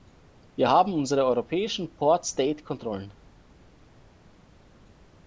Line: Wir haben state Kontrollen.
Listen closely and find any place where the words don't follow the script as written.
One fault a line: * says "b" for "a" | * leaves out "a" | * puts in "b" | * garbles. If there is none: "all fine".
* puts in "unsere europäischen port"